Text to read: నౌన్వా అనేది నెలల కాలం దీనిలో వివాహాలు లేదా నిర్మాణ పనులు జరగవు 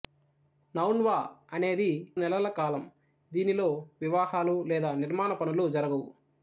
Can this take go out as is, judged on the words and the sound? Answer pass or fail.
pass